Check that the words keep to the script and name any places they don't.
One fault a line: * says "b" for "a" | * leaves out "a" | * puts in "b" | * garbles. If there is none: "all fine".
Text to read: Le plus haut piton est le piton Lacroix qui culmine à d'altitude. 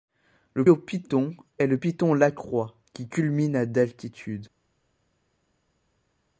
* leaves out "plus"